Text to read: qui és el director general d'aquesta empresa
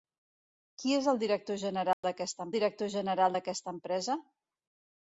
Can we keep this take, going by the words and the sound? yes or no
no